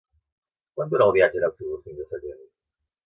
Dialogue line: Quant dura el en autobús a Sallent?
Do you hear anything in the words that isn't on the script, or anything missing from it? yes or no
yes